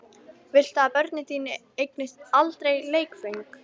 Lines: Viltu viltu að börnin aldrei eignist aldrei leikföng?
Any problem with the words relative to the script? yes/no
yes